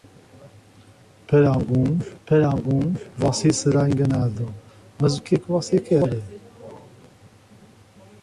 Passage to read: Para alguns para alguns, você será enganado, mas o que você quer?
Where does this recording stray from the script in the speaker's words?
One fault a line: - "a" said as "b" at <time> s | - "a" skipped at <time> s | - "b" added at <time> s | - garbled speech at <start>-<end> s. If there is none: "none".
none